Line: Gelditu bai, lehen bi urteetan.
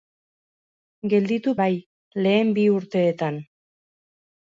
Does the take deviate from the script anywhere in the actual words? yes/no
no